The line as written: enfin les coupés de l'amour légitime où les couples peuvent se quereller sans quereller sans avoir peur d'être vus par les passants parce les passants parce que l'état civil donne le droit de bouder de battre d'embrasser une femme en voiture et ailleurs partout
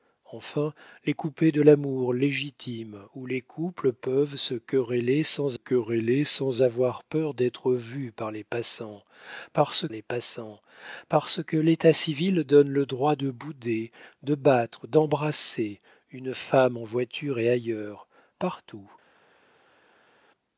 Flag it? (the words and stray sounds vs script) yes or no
no